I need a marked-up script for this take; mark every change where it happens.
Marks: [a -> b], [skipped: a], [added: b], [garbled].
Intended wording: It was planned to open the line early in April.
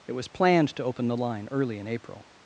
It was planned to open the line early in April.